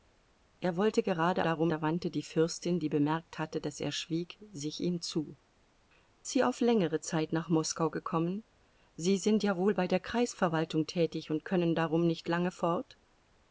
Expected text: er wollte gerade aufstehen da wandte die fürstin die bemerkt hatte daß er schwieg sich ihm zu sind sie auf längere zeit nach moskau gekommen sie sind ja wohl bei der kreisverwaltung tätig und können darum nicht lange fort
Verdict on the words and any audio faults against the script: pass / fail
fail